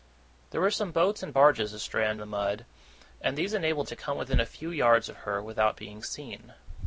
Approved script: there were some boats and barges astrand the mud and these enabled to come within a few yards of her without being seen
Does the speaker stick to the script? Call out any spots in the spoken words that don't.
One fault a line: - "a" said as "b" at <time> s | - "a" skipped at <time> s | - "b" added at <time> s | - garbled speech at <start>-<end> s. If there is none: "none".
none